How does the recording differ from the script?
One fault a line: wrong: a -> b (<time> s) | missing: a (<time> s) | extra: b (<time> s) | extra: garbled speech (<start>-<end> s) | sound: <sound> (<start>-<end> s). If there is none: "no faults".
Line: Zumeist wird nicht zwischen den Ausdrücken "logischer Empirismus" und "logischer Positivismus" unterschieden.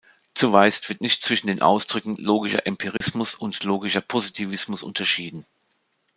sound: dropout (3.0-3.0 s)